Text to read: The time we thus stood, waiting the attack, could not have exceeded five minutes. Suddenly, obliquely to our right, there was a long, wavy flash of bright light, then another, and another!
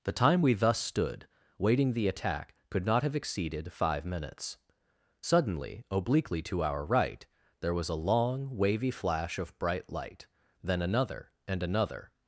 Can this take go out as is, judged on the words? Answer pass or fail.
pass